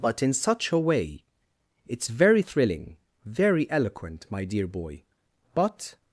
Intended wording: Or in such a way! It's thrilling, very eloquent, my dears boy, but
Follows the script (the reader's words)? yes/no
no